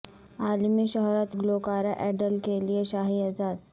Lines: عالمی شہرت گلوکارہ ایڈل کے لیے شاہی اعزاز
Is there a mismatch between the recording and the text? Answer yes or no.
no